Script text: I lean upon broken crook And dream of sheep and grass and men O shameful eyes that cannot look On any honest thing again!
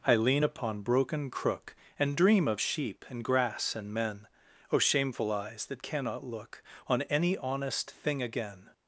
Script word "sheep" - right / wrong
right